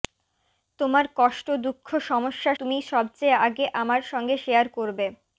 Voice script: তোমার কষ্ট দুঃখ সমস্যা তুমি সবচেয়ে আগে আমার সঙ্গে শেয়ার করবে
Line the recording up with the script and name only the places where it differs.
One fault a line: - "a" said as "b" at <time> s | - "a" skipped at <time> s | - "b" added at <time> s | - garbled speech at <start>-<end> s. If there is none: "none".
none